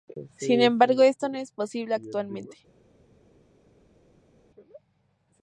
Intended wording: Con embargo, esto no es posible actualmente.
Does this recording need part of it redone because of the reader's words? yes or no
yes